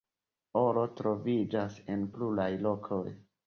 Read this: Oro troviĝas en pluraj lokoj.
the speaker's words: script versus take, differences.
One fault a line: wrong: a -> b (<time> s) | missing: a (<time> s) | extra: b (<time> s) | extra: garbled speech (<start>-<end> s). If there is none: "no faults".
no faults